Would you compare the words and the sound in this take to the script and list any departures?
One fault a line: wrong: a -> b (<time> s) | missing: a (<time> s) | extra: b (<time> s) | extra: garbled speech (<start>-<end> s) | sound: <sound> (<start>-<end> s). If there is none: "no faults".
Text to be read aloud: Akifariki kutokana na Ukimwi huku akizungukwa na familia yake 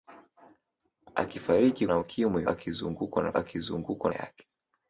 missing: kutokana (1.9 s)
missing: huku (2.4 s)
wrong: familia -> akizungukwa (3.4 s)